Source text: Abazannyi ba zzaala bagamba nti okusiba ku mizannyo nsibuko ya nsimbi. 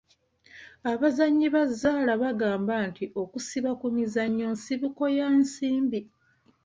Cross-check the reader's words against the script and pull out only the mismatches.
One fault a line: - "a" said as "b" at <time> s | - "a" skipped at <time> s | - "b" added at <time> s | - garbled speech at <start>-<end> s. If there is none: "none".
none